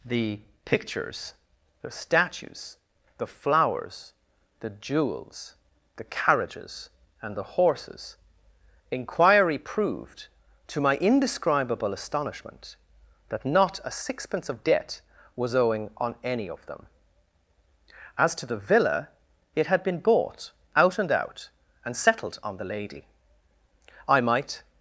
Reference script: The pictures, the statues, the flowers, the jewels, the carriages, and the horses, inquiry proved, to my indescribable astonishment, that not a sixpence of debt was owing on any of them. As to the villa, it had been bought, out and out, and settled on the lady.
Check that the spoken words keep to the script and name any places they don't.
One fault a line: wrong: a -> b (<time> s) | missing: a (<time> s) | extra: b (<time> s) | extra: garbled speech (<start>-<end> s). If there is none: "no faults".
extra: I might (24.1 s)